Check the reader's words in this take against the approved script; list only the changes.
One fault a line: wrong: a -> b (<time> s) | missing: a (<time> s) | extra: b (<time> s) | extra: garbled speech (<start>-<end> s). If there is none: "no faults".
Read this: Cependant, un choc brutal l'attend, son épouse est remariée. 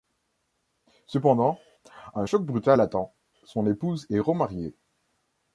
no faults